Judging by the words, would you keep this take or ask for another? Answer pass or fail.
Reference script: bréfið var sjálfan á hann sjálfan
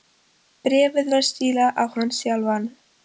fail